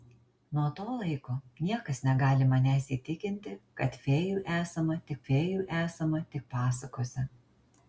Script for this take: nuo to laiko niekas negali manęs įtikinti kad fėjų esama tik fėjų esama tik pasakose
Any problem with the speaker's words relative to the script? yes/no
no